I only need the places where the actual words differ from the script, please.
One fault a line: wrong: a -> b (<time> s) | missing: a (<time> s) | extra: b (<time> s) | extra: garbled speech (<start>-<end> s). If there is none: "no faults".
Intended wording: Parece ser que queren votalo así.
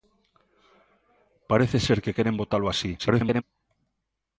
extra: garbled speech (3.0-3.4 s)